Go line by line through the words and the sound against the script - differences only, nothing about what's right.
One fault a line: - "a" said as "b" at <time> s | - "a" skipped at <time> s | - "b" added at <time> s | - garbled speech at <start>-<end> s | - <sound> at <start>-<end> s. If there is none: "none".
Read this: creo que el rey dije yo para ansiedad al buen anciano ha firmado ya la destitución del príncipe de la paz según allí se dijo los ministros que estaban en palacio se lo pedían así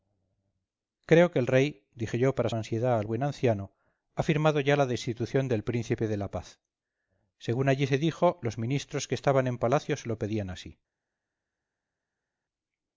none